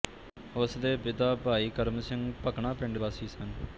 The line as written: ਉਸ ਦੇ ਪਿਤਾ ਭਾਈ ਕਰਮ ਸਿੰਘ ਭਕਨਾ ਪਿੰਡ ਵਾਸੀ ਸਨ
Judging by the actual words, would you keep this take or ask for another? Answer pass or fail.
pass